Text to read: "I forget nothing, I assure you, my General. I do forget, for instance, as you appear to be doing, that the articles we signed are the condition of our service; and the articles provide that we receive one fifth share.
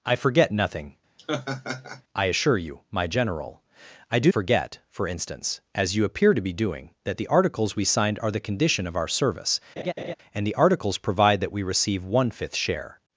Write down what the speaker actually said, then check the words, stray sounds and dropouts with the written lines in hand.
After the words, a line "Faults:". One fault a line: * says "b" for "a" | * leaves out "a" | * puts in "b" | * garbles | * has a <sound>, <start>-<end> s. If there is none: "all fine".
"I forget nothing, I assure you, my General. I do forget, for instance, as you appear to be doing, that the articles we signed are the condition of our service; and the articles provide that we receive one fifth share.
Faults:
* has a laugh, 1.2-2.0 s
* has a laugh, 9.8-10.1 s